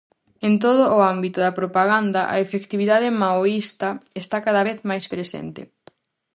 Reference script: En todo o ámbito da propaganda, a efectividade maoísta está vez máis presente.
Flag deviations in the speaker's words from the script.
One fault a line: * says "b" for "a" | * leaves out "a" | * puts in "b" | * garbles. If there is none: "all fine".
* puts in "cada"